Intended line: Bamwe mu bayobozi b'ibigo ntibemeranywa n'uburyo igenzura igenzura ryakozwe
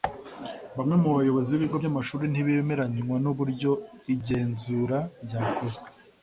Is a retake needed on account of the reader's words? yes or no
yes